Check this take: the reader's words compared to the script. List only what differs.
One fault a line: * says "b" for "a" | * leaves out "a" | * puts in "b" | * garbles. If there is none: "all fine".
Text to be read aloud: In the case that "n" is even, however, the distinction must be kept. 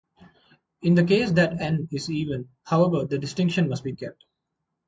all fine